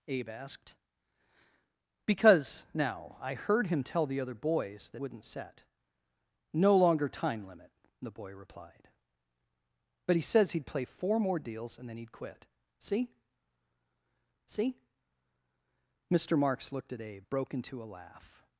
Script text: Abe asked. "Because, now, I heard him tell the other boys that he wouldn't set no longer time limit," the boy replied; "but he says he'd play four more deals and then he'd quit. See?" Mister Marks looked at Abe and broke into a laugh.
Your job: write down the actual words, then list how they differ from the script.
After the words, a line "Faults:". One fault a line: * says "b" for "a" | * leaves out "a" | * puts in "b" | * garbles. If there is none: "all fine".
Abe asked. "Because, now, I heard him tell the other boys that wouldn't set no longer time limit," the boy replied; "but he says he'd play four more deals and then he'd quit. See see?" Mister Marks looked at Abe broke into a laugh.
Faults:
* leaves out "he"
* puts in "see"
* leaves out "and"